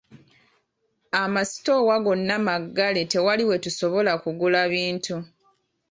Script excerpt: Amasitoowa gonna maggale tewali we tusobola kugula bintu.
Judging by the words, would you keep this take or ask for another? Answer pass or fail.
pass